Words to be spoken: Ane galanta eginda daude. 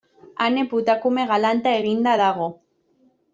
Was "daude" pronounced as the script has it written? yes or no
no